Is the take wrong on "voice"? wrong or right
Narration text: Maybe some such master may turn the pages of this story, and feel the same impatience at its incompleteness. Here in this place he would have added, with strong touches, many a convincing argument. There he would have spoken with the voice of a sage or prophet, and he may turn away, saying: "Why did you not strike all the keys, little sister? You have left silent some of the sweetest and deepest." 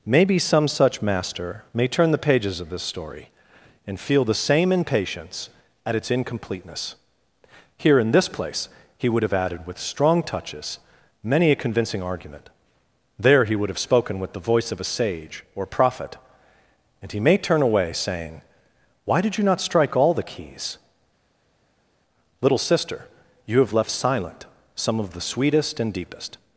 right